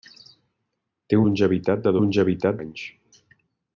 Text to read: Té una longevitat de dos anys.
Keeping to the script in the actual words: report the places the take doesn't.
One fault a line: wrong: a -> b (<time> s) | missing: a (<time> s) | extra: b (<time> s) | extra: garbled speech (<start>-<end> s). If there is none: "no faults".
missing: una (1.2 s)
wrong: dos -> longevitat (2.0 s)